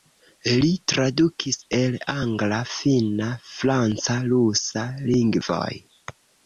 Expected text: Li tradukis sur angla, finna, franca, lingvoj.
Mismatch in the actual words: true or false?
true